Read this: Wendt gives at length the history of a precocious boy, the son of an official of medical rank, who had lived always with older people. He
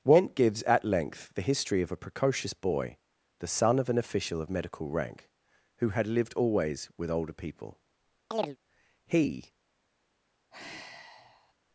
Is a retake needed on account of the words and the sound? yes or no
yes